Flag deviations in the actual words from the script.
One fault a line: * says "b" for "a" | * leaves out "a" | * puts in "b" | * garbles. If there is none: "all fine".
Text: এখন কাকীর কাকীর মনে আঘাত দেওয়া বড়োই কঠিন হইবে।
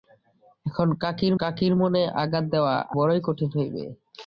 all fine